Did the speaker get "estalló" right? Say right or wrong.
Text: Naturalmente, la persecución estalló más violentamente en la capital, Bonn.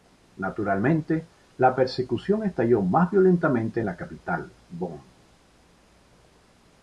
right